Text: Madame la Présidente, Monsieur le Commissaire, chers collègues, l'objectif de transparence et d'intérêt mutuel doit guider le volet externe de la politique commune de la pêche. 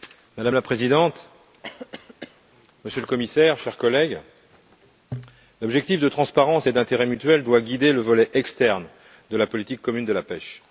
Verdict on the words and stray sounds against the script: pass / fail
fail